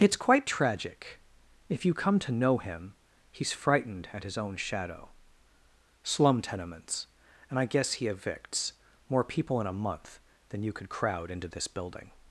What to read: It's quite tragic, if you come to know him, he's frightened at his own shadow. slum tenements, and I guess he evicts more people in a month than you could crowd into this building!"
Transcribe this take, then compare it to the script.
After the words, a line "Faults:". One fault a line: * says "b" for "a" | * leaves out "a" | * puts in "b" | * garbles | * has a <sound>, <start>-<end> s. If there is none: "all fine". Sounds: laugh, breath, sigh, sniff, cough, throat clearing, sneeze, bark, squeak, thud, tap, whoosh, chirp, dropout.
It's quite tragic, if you come to know him, he's frightened at his own shadow. slum tenements, and I guess he evicts more people in a month than you could crowd into this building!"
Faults:
all fine